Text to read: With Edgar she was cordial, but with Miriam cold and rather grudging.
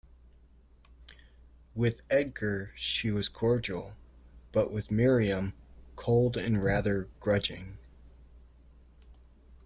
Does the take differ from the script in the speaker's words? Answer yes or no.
no